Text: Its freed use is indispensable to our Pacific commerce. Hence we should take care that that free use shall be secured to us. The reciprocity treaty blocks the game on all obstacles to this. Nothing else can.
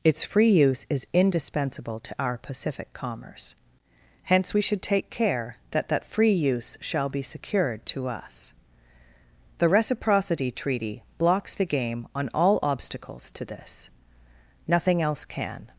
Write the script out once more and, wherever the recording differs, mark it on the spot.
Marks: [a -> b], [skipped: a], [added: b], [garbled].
Its [freed -> free] use is indispensable to our Pacific commerce. Hence we should take care that that free use shall be secured to us. The reciprocity treaty blocks the game on all obstacles to this. Nothing else can.